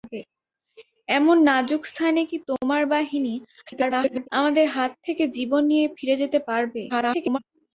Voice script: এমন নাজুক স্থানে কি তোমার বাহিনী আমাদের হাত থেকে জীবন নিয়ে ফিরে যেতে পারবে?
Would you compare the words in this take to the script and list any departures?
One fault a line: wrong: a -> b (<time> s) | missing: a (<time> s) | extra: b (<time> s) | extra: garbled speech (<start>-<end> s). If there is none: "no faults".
extra: garbled speech (3.7-4.3 s)
extra: garbled speech (6.9-7.4 s)